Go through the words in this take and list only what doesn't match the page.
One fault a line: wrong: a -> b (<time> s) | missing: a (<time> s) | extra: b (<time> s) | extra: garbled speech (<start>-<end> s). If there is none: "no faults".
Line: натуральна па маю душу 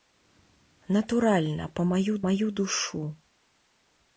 extra: маю (2.2 s)